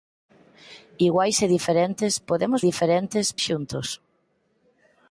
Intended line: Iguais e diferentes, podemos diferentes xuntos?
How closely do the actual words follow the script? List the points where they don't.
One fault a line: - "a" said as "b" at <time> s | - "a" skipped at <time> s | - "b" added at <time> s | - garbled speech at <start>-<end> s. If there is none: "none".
none